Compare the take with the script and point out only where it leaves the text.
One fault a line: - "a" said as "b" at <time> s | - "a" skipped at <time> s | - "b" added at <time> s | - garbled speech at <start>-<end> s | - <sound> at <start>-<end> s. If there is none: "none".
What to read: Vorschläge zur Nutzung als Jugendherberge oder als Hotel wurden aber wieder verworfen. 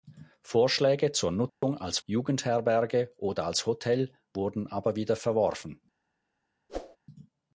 - dropout at 1.5-1.6 s
- whoosh at 6.7-7.0 s